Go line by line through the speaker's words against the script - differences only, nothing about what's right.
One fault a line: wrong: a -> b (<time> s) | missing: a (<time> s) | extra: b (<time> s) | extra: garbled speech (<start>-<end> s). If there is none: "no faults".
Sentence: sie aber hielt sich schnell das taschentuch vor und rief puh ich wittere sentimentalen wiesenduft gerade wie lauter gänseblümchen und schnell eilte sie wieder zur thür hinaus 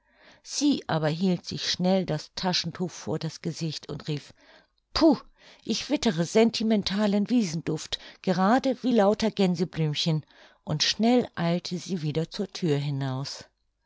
extra: das gesicht (3.2 s)